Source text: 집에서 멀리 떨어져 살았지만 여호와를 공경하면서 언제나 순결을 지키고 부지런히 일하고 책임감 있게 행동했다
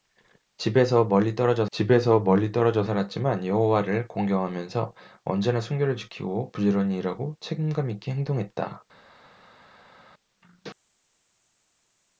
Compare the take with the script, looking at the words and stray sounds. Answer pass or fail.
fail